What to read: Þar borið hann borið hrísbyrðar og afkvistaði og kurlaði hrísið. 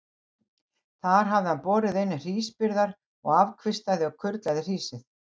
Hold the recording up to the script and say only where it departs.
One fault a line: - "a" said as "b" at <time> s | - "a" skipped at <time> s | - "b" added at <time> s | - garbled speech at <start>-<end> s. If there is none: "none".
- "borið" said as "hafði" at 1.3 s
- "inn" added at 2.0 s